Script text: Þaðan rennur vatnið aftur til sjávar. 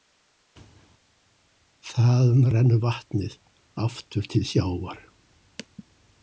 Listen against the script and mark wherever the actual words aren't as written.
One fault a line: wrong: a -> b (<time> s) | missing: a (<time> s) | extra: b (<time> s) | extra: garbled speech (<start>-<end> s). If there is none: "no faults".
no faults